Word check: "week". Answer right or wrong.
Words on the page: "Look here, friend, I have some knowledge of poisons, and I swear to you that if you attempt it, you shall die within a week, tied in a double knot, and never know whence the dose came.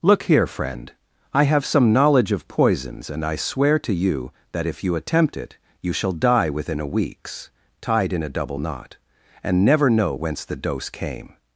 wrong